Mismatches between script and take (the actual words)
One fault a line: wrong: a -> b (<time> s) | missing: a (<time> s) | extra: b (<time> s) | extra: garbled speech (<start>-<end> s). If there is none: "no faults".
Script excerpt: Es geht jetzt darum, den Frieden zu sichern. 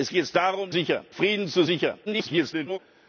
missing: geht (0.1 s)
wrong: den -> sichern (0.7 s)
extra: garbled speech (2.1-2.8 s)